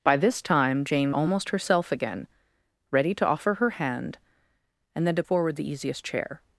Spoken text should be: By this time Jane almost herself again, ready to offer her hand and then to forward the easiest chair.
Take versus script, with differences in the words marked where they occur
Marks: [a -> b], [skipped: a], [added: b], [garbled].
By this time Jane almost herself again, ready to offer her hand and then to forward the easiest chair.